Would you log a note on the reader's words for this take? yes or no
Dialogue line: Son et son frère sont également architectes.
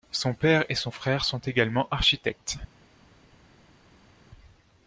yes